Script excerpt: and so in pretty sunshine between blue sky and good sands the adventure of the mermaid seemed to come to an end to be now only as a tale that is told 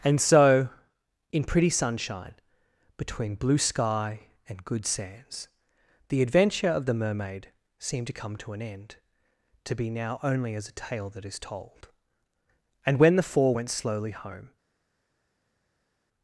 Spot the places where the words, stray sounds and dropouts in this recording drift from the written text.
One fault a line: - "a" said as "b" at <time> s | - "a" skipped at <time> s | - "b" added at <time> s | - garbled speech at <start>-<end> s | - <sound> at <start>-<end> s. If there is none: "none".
- "and when the four went slowly home" added at 12.8 s